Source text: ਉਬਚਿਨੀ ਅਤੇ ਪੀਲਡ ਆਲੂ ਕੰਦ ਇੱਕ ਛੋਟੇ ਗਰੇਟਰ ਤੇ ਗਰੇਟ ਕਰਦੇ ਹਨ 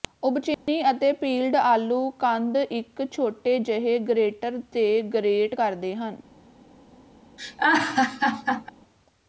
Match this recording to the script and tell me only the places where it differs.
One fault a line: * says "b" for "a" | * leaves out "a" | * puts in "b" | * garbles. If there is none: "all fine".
* puts in "ਜਿਹੇ"